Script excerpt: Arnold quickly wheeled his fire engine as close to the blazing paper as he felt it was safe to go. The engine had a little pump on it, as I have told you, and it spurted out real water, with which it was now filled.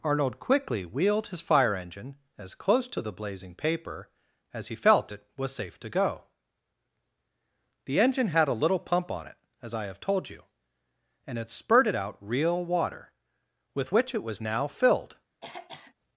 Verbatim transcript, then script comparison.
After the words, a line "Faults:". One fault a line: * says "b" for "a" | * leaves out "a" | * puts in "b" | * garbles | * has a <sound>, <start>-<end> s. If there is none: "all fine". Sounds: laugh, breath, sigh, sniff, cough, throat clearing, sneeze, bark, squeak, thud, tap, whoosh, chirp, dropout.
Arnold quickly wheeled his fire engine as close to the blazing paper as he felt it was safe to go. The engine had a little pump on it, as I have told you, and it spurted out real water, with which it was now filled.
Faults:
* has a throat clearing, 15.4-15.9 s